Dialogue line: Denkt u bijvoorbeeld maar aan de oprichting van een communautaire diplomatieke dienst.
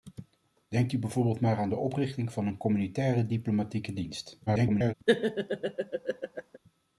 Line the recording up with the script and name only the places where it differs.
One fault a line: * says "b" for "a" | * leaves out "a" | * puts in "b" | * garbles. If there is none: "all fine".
* garbles